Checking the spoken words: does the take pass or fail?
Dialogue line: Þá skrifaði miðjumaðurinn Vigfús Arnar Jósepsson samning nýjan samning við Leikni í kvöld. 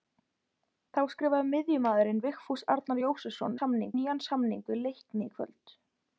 pass